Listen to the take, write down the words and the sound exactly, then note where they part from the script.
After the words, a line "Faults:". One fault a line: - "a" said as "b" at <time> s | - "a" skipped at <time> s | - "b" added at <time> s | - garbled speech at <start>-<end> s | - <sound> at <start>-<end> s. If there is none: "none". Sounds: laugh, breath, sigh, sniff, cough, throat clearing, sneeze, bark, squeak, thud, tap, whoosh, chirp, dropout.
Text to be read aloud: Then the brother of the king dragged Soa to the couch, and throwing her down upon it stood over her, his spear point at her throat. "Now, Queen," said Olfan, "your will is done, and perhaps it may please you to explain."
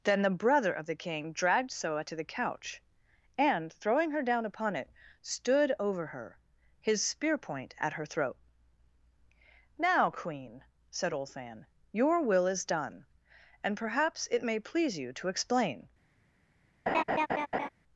Then the brother of the king dragged Soa to the couch, and throwing her down upon it stood over her, his spear point at her throat. "Now, Queen," said Olfan, "your will is done, and perhaps it may please you to explain."
Faults:
- laugh at 16.9-17.7 s